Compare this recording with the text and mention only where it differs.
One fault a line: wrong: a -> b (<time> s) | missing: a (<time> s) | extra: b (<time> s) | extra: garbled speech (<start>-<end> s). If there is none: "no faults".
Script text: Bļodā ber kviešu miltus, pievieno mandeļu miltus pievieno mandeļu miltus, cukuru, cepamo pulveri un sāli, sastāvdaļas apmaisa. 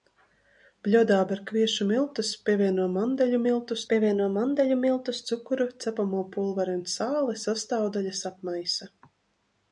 no faults